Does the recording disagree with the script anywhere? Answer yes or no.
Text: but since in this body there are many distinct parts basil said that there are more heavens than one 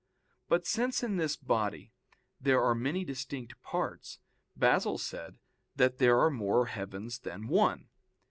no